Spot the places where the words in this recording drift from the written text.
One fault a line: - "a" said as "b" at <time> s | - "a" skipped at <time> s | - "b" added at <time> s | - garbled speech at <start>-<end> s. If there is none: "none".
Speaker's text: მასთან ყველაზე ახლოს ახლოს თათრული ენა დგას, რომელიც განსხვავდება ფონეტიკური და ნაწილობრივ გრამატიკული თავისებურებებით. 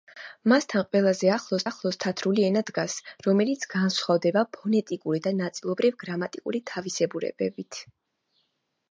none